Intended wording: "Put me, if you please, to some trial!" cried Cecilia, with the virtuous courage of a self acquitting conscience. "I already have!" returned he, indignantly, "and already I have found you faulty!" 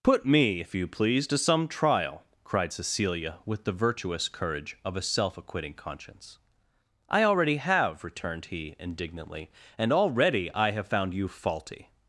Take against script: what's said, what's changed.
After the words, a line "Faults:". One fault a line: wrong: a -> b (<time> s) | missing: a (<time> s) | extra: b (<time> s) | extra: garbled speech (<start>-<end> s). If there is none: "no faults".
"Put me, if you please, to some trial!" cried Cecilia, with the virtuous courage of a self acquitting conscience. "I already have!" returned he, indignantly, "and already I have found you faulty!"
Faults:
no faults